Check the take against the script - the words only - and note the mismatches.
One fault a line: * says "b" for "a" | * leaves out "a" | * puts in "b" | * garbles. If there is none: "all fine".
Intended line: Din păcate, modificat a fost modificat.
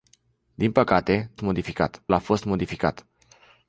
all fine